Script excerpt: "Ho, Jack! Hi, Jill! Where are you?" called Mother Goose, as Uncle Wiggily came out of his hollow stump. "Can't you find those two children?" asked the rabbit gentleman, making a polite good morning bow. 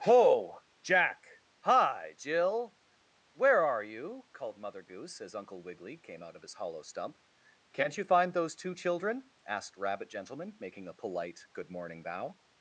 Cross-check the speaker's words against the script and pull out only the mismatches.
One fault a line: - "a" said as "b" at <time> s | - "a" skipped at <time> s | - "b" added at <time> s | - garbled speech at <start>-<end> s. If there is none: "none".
- "the" skipped at 9.8 s